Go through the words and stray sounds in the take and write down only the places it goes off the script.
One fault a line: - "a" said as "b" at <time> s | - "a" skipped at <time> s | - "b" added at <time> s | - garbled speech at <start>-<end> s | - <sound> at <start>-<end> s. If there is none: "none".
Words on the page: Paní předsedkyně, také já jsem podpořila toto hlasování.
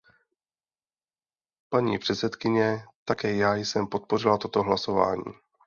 none